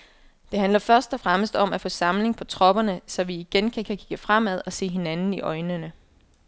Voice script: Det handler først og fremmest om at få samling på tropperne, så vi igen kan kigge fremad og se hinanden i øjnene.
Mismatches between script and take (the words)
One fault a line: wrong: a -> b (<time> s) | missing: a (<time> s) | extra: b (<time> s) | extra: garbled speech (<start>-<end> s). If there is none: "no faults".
extra: kan (3.8 s)